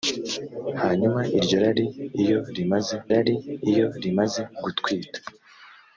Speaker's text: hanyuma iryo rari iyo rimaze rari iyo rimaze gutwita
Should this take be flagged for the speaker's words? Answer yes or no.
no